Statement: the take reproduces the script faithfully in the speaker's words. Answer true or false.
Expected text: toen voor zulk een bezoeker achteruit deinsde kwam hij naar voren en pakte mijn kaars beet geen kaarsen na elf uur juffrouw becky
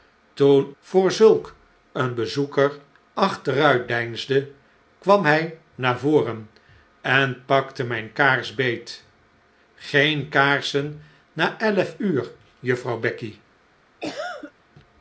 true